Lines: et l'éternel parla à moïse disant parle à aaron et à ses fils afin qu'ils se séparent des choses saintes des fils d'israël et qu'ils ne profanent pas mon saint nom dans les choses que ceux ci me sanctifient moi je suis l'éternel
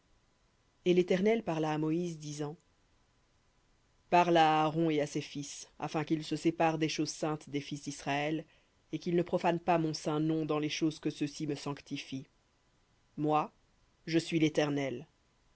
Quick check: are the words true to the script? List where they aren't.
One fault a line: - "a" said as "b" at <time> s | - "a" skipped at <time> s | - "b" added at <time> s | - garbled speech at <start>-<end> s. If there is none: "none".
none